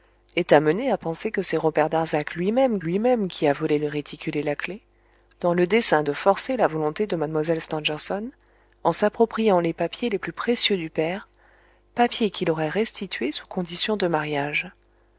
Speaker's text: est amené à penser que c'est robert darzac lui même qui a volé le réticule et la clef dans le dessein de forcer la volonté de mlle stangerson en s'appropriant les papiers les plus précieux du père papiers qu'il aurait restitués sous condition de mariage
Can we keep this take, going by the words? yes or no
no